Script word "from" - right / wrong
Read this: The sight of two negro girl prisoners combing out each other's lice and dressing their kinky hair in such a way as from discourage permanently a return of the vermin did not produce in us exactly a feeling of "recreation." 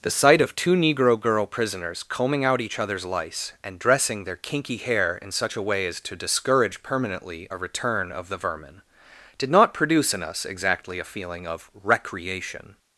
wrong